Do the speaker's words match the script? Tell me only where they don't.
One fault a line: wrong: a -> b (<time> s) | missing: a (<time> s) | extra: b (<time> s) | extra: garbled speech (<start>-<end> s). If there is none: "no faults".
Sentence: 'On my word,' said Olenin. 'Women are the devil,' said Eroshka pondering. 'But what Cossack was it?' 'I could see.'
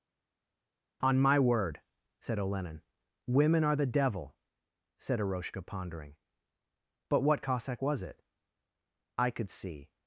no faults